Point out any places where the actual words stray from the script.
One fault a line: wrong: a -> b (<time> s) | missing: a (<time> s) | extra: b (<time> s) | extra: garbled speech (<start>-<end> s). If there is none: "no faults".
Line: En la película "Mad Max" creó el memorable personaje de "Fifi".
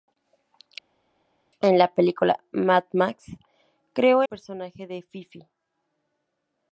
missing: el memorable (4.2 s)